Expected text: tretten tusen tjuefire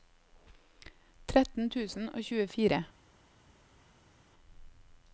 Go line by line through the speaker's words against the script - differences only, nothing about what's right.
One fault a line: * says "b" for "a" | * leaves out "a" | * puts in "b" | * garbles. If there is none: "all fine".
* puts in "og"